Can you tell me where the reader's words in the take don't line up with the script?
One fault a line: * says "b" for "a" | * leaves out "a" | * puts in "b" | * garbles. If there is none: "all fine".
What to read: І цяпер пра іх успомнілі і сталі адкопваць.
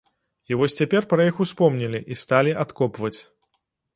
* puts in "вось"